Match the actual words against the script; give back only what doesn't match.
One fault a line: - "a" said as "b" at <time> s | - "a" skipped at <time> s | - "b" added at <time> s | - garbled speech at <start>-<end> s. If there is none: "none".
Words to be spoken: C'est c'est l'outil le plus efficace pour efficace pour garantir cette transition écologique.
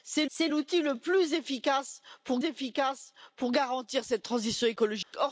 none